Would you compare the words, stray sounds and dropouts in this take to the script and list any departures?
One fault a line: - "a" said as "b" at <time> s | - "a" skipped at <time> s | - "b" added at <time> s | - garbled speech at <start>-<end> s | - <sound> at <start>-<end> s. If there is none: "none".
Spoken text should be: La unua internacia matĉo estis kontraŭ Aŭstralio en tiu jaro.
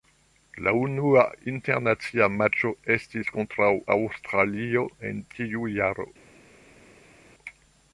none